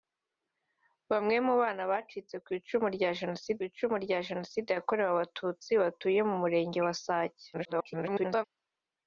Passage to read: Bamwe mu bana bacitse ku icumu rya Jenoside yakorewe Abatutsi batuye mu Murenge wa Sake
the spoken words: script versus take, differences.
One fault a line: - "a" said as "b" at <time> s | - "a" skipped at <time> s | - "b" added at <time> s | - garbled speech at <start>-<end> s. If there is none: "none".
- "icumu rya Jenoside" added at 3.7 s
- garbled speech at 7.5-8.4 s